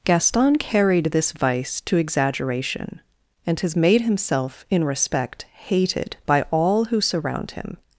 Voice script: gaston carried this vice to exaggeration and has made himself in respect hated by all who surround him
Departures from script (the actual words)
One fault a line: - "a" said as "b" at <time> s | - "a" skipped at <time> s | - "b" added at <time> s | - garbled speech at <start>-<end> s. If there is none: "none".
none